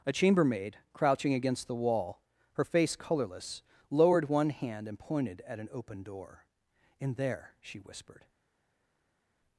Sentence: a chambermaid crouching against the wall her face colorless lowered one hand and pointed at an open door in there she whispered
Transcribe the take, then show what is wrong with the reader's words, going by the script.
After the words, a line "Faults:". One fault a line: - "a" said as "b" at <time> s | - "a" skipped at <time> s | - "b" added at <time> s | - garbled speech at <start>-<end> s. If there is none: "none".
a chambermaid crouching against the wall her face colorless lowered one hand and pointed at an open door in there she whispered
Faults:
none